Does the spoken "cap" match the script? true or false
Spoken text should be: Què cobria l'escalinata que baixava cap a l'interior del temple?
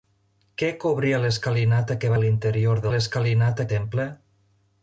false